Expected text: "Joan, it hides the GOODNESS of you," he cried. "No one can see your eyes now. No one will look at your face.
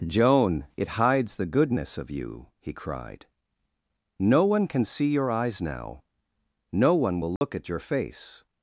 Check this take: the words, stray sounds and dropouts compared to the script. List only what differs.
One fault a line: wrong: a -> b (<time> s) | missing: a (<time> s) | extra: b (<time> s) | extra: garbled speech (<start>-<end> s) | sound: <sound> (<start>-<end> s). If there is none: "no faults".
sound: dropout (7.4-7.4 s)